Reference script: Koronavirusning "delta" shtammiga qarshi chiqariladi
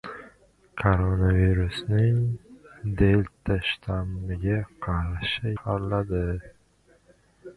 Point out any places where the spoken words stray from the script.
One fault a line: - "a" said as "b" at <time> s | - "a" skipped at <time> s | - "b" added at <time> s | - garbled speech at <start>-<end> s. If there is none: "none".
none